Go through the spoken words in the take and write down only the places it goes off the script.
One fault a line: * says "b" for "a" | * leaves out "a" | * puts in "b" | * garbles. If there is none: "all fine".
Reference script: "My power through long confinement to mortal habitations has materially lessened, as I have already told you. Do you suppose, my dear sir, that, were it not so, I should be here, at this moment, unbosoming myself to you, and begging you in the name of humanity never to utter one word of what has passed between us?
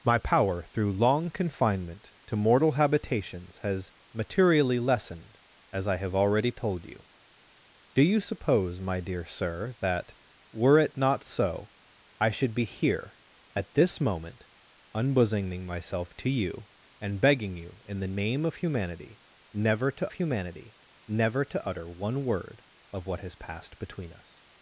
* puts in "humanity never to"